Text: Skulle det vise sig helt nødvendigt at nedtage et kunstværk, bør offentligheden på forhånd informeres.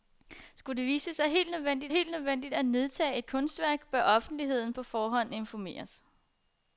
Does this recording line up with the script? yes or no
no